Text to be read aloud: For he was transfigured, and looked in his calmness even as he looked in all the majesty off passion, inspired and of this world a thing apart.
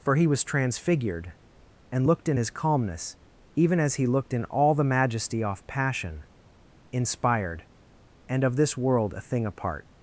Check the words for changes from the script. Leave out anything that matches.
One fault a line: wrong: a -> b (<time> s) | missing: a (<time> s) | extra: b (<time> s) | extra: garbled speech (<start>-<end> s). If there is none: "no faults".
no faults